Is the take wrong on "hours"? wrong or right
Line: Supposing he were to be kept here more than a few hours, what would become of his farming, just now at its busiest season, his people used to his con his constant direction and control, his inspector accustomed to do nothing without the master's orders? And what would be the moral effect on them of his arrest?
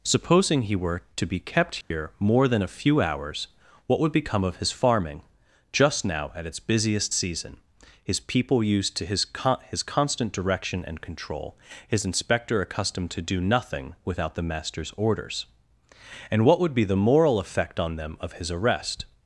right